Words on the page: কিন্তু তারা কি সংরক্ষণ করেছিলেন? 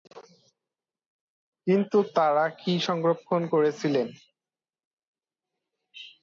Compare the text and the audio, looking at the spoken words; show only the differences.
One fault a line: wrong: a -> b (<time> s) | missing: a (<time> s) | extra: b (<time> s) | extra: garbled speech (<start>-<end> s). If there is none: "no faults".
no faults